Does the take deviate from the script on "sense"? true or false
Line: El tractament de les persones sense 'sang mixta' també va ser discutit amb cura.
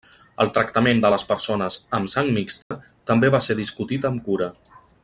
true